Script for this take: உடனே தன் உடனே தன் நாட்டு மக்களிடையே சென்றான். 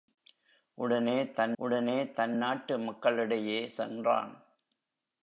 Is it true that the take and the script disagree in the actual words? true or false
false